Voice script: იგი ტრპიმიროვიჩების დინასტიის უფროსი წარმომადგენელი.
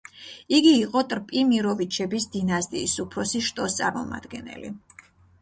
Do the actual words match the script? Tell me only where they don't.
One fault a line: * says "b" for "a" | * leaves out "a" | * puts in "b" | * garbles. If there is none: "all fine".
* puts in "იყო"
* puts in "შტოს"